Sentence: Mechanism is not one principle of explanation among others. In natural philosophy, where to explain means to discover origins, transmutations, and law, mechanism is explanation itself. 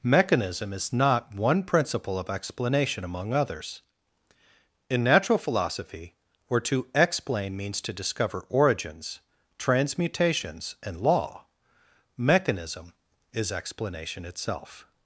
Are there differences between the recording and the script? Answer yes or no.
no